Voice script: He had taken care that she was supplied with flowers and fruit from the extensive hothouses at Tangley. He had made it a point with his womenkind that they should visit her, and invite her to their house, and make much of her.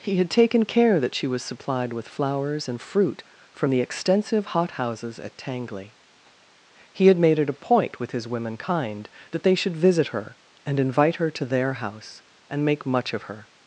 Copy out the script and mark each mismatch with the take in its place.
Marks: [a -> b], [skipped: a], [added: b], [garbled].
He had taken care that she was supplied with flowers and fruit from the extensive hothouses at Tangley. He had made it a point with his womenkind that they should visit her, and invite her to their house, and make much of her.